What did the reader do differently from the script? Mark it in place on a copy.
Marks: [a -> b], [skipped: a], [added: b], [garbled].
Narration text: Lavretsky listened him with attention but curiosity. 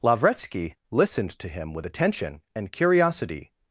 Lavretsky listened [added: to] him with attention [but -> and] curiosity.